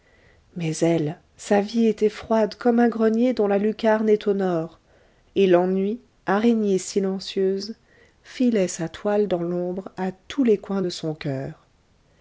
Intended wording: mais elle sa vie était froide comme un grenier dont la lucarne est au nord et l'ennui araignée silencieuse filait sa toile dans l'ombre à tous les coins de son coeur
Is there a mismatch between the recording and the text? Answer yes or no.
no